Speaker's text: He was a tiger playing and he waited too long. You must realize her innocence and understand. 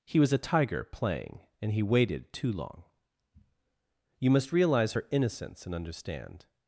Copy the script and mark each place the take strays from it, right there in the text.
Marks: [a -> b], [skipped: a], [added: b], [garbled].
He was a tiger playing and he waited too long. You must realize her innocence and understand.